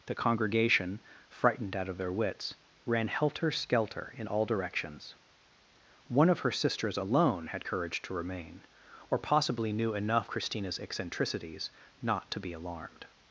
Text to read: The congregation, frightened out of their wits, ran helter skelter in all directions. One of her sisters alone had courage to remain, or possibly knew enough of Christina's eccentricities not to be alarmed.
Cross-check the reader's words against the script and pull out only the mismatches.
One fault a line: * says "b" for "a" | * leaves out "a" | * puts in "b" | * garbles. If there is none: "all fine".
* leaves out "of"